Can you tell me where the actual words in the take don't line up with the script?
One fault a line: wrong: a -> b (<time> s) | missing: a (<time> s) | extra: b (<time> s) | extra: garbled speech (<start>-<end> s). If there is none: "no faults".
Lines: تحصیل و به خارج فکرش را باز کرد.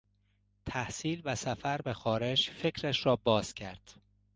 extra: سفر (1.3 s)